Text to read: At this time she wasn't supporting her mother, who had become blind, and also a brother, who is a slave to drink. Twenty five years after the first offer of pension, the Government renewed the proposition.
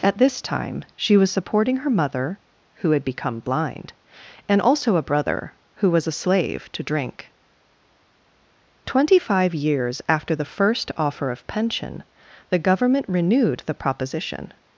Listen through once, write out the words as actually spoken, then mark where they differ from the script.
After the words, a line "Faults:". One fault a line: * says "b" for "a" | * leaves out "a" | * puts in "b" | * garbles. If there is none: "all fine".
At this time she was supporting her mother, who had become blind, and also a brother, who was a slave to drink. Twenty five years after the first offer of pension, the Government renewed the proposition.
Faults:
* says "was" for "wasn't"
* says "was" for "is"